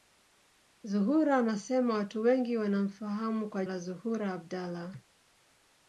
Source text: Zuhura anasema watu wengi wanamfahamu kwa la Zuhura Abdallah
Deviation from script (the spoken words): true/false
false